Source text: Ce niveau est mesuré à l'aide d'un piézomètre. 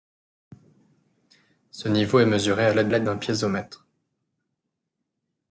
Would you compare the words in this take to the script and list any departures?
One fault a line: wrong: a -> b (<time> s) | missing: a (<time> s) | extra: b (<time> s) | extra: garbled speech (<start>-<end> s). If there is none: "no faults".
extra: l'aide (2.9 s)